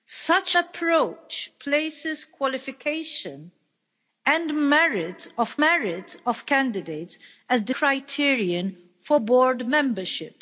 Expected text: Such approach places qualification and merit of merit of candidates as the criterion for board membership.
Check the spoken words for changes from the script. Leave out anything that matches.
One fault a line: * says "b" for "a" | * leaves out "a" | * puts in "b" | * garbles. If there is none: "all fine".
all fine